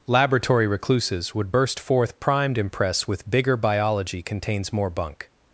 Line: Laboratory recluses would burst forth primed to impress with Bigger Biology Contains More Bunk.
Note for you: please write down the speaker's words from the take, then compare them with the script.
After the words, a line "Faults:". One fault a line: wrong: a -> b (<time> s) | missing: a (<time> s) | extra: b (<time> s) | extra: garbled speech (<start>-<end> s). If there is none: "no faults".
Laboratory recluses would burst forth primed impress with Bigger Biology Contains More Bunk.
Faults:
missing: to (2.6 s)